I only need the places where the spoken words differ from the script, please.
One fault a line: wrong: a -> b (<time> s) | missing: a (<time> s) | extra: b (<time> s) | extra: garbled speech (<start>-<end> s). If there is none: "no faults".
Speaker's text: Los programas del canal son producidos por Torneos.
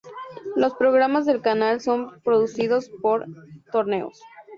no faults